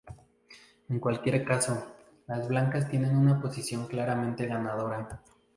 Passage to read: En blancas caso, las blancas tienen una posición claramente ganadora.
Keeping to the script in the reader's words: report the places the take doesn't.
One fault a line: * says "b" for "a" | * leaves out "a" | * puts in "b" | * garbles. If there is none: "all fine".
* says "cualquier" for "blancas"